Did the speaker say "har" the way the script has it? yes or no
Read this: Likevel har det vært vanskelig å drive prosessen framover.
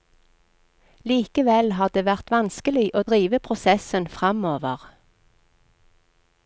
yes